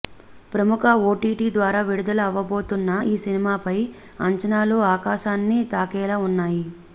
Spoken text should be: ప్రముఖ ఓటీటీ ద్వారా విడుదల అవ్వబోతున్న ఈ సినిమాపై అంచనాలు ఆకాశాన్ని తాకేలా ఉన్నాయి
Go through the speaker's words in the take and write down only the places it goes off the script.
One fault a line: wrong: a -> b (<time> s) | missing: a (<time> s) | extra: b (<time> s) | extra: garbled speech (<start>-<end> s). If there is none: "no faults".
no faults